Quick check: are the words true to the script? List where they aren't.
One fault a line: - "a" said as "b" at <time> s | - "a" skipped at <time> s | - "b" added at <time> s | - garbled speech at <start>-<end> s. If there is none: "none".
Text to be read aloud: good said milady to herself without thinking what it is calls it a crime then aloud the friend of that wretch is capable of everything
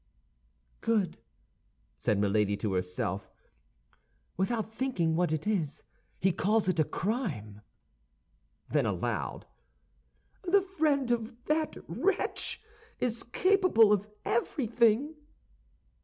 - "he" added at 6.2 s